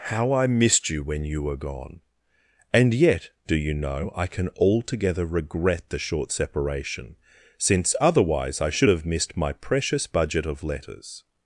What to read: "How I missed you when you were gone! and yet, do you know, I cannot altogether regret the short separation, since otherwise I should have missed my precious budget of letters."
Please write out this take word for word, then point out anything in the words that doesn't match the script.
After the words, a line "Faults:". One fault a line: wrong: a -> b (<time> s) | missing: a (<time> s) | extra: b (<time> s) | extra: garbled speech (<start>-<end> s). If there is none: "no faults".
"How I missed you when you were gone! and yet, do you know, I can altogether regret the short separation, since otherwise I should have missed my precious budget of letters."
Faults:
wrong: cannot -> can (4.3 s)